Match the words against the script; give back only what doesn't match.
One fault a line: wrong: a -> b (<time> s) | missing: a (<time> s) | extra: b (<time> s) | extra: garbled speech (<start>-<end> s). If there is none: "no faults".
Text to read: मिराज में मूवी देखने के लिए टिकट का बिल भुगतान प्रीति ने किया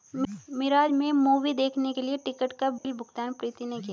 no faults